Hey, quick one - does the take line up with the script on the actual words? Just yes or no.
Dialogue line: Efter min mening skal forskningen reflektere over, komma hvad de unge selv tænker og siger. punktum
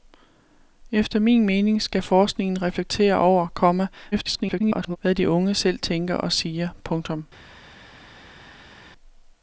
no